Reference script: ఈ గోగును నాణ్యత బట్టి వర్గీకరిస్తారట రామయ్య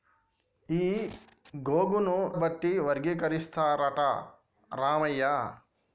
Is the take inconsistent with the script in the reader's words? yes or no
yes